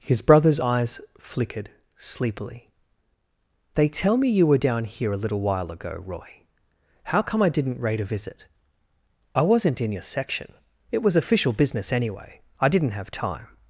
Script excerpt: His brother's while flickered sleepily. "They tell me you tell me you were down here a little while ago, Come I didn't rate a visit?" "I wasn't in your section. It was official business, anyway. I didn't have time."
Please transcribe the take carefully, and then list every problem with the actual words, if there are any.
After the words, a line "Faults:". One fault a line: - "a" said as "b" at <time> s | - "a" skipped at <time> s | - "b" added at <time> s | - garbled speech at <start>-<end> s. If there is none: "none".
His brother's eyes flickered sleepily. "They tell me you were down here a little while ago, Roy. How come I didn't rate a visit?" "I wasn't in your section. It was official business, anyway. I didn't have time."
Faults:
- "while" said as "eyes" at 0.6 s
- "tell me you" skipped at 4.5 s
- "Roy How" added at 6.1 s